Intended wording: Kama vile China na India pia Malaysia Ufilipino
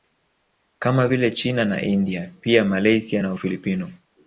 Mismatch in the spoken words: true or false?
true